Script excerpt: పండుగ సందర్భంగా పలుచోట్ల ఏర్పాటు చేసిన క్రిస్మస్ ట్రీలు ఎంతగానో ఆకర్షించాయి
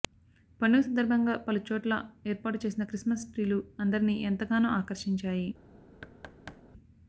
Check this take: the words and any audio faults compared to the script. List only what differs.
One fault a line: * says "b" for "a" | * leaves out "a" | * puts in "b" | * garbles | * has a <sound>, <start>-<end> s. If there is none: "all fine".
* puts in "అందరినీ"
* has a thud, 6.0-6.6 s